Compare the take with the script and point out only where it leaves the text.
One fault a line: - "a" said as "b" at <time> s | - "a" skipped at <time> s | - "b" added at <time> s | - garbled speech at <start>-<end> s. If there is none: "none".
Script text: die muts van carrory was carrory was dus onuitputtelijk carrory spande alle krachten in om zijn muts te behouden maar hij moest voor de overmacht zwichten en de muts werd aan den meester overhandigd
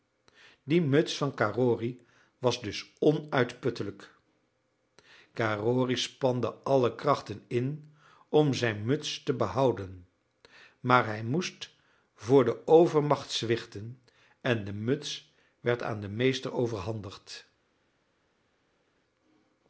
- "carrory was" skipped at 2.6 s